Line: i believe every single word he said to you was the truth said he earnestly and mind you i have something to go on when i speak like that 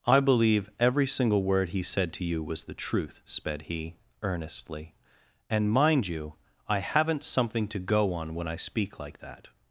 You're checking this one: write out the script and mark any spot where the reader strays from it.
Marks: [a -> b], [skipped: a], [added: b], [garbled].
i believe every single word he said to you was the truth [said -> sped] he earnestly and mind you i [have -> haven't] something to go on when i speak like that